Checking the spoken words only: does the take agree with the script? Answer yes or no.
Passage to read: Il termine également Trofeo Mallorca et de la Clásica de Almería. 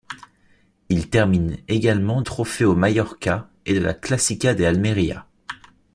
yes